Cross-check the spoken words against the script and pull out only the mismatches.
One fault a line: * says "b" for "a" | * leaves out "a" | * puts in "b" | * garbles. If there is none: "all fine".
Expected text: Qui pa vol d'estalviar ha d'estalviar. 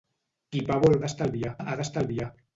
all fine